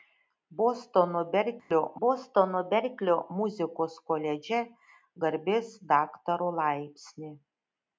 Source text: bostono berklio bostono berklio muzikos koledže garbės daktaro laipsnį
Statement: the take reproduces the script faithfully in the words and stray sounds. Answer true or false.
false